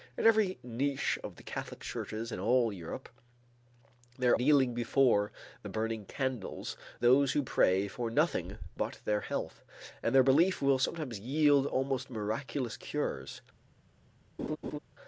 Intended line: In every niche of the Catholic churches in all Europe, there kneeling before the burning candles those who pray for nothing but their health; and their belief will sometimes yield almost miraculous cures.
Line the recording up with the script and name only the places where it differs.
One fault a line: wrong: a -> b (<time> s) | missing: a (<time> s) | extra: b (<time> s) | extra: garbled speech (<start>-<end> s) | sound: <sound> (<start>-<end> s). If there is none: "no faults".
sound: laugh (14.4-14.8 s)